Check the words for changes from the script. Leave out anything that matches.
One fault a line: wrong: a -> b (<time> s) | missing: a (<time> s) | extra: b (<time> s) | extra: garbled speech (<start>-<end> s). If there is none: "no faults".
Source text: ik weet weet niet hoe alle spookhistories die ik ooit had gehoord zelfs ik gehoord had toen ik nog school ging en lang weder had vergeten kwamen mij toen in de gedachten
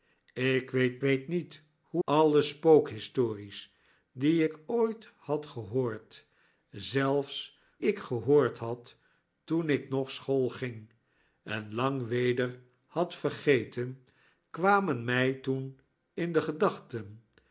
no faults